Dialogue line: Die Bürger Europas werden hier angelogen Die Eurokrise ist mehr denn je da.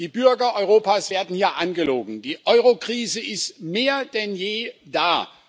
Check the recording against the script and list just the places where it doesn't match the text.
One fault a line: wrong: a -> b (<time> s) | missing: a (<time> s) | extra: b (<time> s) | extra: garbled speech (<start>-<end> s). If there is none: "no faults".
no faults